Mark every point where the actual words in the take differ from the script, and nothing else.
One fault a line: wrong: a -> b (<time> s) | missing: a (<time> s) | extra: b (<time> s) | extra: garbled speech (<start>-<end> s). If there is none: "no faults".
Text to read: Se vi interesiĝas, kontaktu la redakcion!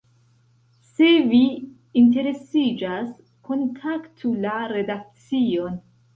no faults